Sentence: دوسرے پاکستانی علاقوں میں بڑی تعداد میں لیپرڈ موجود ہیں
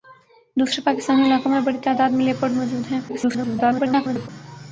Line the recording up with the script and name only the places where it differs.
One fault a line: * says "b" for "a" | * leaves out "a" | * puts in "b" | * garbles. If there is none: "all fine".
* garbles